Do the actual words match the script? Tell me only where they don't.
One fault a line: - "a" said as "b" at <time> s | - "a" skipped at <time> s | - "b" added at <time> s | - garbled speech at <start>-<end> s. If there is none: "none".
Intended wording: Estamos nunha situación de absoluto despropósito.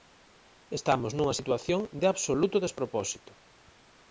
none